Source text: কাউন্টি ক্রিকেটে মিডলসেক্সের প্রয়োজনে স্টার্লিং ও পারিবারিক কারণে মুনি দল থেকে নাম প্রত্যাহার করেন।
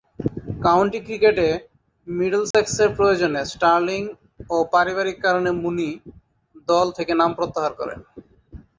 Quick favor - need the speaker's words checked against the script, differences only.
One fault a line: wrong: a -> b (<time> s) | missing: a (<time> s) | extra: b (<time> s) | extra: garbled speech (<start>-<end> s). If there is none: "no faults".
no faults